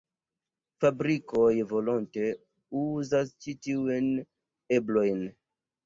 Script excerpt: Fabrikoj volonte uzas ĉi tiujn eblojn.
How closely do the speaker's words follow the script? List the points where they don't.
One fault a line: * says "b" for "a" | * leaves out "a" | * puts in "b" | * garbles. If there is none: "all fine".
all fine